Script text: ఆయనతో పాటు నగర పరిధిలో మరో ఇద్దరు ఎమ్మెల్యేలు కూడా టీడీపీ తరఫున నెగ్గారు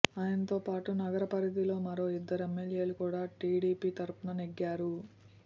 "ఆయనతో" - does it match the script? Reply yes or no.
yes